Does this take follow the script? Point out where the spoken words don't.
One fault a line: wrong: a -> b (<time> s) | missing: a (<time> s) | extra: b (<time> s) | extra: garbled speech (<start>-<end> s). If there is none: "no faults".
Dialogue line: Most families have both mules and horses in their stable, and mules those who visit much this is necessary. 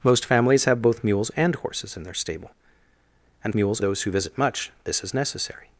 no faults